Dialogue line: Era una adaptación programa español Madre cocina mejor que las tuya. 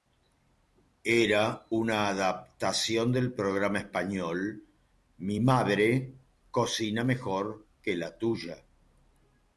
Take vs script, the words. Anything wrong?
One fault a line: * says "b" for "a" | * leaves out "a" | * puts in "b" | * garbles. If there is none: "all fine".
* puts in "del"
* puts in "Mi"
* says "la" for "las"